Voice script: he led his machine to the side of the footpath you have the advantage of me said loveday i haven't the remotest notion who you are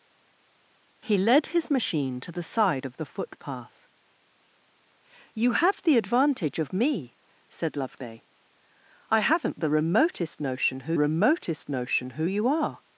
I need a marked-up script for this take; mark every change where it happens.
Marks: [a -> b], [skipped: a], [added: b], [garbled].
he led his machine to the side of the footpath you have the advantage of me said loveday i haven't the remotest notion who [added: remotest notion who] you are